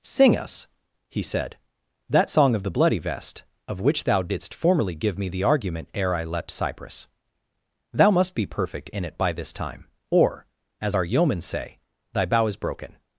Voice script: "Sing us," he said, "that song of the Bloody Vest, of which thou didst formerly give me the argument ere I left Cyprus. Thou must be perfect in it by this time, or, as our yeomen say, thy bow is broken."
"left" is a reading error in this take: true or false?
true